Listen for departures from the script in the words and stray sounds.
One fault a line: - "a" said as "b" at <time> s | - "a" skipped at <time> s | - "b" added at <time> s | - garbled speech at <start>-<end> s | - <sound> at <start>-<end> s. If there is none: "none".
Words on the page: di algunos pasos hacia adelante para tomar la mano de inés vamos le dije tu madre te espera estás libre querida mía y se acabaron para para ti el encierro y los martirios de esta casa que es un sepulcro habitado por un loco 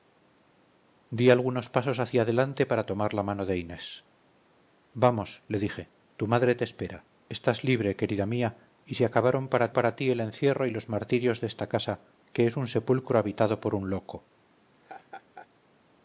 - laugh at 14.7-15.5 s